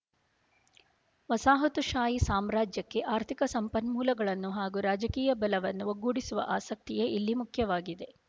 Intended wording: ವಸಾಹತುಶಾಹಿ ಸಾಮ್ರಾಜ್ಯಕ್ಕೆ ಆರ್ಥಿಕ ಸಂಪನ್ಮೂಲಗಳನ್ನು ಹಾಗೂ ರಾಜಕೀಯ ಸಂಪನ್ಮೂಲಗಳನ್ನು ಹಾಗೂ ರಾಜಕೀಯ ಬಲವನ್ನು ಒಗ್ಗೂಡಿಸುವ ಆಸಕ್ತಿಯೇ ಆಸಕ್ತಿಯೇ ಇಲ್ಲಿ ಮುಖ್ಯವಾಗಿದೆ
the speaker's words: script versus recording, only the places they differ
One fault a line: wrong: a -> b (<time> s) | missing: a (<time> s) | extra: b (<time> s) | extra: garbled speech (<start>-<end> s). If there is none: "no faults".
missing: ಸಂಪನ್ಮೂಲಗಳನ್ನು ಹಾಗೂ ರಾಜಕೀಯ (5.3 s)
missing: ಆಸಕ್ತಿಯೇ (7.1 s)